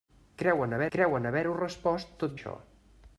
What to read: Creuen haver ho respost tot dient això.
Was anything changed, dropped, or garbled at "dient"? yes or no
yes